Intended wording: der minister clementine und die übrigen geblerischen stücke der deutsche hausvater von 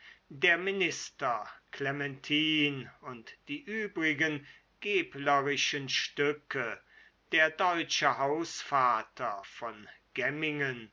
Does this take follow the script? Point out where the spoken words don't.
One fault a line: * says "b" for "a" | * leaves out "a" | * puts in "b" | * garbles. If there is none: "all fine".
all fine